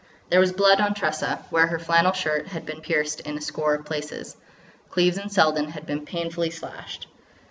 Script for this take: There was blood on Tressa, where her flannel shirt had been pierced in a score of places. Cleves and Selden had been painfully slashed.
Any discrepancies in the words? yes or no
no